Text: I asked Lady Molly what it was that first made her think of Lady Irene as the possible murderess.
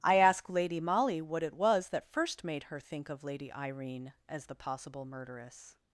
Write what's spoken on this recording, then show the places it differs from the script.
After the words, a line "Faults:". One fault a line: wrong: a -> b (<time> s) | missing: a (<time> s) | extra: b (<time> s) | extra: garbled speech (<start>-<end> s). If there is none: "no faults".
I ask Lady Molly what it was that first made her think of Lady Irene as the possible murderess.
Faults:
wrong: asked -> ask (0.1 s)